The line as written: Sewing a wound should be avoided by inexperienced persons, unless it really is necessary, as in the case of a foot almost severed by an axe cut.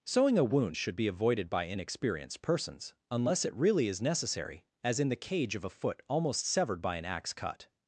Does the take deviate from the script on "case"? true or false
true